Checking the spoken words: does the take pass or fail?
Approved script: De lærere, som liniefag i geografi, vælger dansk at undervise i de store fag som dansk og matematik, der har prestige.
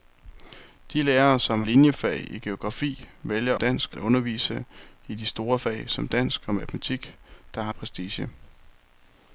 pass